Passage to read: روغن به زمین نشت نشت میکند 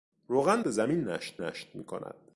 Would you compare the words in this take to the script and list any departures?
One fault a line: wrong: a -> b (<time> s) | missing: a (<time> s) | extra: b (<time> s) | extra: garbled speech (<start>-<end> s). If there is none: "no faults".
no faults